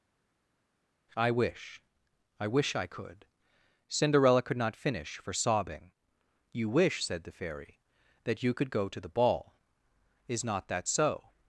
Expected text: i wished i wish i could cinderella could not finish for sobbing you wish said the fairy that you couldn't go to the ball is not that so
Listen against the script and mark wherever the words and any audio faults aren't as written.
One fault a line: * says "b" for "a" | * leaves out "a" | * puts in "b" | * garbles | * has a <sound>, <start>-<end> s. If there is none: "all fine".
* says "wish" for "wished"
* says "could" for "couldn't"